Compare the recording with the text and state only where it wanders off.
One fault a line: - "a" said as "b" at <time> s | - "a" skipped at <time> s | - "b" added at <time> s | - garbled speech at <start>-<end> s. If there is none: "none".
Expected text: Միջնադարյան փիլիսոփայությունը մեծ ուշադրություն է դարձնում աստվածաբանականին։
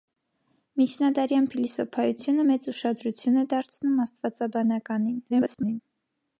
- garbled speech at 5.3-5.8 s